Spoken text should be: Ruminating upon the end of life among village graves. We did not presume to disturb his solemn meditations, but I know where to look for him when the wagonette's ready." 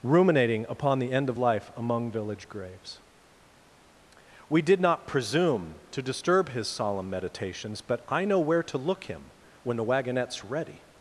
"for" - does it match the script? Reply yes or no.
no